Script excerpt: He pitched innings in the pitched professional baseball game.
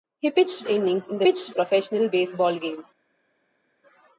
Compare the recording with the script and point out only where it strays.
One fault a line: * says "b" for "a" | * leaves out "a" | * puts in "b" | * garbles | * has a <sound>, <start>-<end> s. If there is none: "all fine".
all fine